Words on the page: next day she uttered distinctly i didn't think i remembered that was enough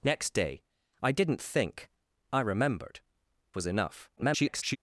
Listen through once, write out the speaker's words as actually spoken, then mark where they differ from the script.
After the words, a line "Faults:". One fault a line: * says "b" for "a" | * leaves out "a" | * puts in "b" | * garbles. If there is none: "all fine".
next day i didn't think i remembered was enough [garbled]
Faults:
* leaves out "she uttered distinctly"
* leaves out "that"
* garbles